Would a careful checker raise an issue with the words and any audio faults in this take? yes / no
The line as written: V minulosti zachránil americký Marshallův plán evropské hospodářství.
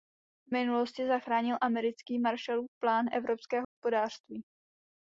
yes